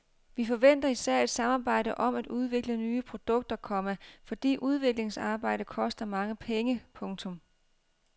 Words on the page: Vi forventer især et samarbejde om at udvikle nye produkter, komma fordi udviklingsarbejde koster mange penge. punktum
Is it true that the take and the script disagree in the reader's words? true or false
false